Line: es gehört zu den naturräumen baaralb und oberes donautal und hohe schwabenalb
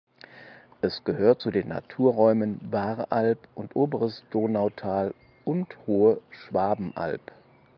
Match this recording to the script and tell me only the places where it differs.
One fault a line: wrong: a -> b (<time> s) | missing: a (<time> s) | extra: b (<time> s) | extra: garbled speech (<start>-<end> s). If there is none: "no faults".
no faults